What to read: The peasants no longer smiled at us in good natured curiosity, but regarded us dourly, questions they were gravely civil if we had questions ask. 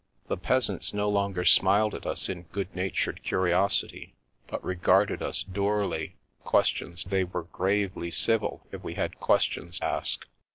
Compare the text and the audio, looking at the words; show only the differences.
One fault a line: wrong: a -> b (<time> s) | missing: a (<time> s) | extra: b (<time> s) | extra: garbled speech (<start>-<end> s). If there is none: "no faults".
no faults